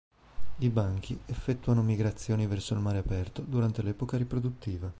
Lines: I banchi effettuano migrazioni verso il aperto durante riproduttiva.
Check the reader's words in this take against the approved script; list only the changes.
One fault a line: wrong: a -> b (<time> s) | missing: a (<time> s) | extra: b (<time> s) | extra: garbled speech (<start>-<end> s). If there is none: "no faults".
extra: mare (2.8 s)
extra: l'epoca (3.8 s)